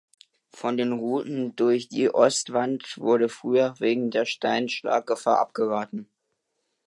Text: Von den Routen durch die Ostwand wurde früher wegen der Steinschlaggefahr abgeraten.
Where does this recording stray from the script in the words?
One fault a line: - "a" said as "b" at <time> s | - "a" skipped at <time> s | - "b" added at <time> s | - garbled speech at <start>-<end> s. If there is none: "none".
none